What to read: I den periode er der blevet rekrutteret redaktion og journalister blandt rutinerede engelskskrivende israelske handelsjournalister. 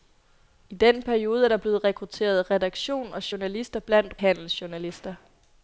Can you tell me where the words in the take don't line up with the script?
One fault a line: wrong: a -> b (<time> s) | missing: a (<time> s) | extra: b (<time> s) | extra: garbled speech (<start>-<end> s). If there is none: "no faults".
missing: rutinerede engelskskrivende israelske (4.1 s)